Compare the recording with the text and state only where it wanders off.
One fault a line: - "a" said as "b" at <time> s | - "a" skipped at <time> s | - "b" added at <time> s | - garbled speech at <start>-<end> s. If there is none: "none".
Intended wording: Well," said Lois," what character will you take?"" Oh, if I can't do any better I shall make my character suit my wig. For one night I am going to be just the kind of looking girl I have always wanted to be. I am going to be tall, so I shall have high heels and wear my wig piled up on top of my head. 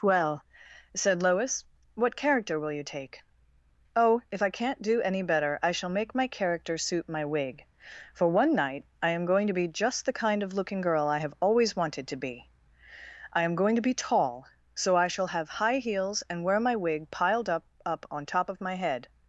- "up" added at 17.9 s